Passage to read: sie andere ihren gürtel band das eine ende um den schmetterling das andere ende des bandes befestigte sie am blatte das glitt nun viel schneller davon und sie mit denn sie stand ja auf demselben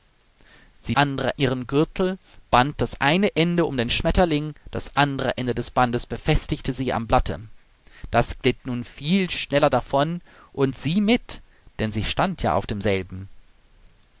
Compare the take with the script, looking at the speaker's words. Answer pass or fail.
pass